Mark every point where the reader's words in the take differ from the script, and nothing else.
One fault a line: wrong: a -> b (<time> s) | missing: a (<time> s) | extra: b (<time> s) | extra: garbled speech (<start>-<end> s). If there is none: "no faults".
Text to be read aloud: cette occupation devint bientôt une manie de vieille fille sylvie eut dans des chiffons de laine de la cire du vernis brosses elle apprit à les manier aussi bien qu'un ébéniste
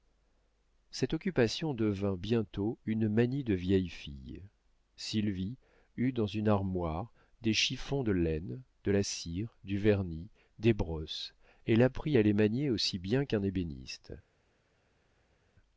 extra: une armoire (6.2 s)
extra: des (10.6 s)